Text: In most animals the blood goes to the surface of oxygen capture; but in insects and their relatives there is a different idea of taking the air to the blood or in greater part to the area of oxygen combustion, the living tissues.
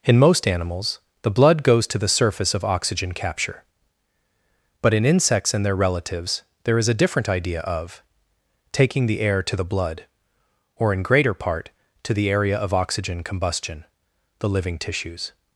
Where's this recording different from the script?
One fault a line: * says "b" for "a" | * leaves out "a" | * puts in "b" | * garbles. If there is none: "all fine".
all fine